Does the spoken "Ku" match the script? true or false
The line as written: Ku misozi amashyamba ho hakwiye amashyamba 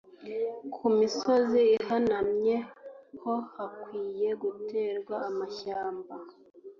true